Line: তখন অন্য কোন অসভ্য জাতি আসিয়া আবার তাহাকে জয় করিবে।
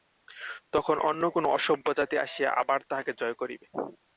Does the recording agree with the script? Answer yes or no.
yes